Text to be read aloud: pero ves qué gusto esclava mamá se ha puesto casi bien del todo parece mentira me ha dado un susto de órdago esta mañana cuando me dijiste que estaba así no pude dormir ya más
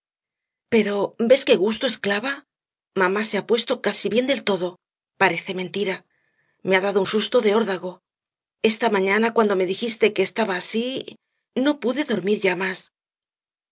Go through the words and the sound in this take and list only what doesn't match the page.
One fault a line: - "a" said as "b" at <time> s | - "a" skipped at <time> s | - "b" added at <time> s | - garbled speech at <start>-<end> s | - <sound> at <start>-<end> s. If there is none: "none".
none